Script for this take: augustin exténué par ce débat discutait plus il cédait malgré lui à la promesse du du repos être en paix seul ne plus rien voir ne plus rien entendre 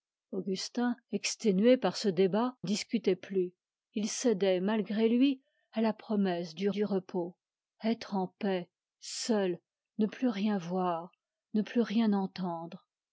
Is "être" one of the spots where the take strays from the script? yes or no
no